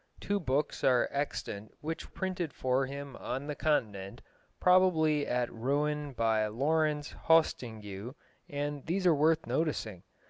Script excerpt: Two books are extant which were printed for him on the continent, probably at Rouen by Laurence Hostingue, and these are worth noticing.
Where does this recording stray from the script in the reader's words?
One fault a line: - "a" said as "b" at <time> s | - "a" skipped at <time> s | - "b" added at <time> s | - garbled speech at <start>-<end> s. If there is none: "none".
- "were" skipped at 2.1 s